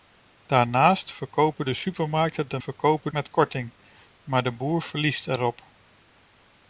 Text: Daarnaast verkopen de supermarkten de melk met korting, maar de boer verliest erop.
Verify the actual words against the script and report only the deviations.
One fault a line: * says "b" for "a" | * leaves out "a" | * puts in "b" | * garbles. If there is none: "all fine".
* says "verkopen" for "melk"